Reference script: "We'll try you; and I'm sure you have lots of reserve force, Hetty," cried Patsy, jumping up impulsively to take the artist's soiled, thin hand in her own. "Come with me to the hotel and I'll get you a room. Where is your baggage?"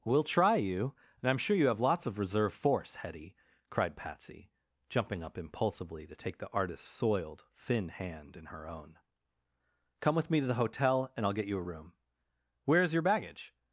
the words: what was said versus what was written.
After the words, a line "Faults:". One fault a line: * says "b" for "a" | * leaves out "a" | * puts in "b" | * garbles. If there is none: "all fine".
"We'll try you; and I'm sure you have lots of reserve force, Hetty," cried Patsy, jumping up impulsively to take the artist's soiled, thin hand in her own. "Come with me to the hotel and I'll get you a room. Where is your baggage?"
Faults:
all fine